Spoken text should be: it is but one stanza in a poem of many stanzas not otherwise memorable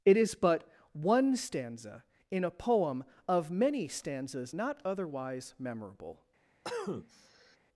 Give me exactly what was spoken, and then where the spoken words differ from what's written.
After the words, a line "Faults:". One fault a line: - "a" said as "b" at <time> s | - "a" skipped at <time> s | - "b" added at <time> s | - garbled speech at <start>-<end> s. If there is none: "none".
it is but one stanza in a poem of many stanzas not otherwise memorable
Faults:
none